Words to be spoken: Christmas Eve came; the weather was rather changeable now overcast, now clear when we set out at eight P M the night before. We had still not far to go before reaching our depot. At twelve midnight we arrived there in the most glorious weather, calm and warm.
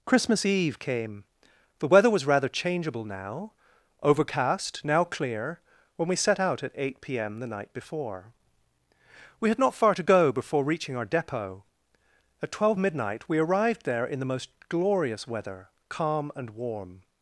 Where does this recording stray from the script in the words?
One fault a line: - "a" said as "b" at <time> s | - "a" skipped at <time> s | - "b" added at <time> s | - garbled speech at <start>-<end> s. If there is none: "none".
- "still" skipped at 9.6 s